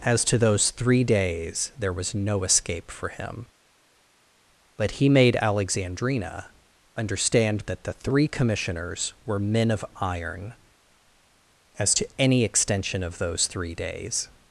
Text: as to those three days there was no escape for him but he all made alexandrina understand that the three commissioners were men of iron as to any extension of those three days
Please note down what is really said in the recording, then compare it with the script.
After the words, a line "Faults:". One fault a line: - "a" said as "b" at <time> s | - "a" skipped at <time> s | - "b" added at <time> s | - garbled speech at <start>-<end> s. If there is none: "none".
as to those three days there was no escape for him but he made alexandrina understand that the three commissioners were men of iron as to any extension of those three days
Faults:
- "all" skipped at 5.1 s